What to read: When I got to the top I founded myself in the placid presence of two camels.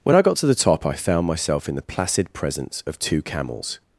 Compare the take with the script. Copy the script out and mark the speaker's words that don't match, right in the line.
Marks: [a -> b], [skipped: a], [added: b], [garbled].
When I got to the top I [founded -> found] myself in the placid presence of two camels.